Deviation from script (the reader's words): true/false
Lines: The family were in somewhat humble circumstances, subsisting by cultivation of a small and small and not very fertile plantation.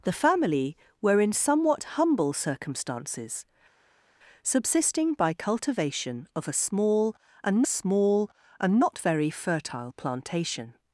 false